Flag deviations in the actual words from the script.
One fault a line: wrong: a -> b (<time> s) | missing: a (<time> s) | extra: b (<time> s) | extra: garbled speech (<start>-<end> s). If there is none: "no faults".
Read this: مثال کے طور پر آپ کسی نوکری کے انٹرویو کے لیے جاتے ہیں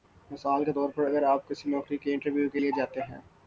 extra: اگر (1.1 s)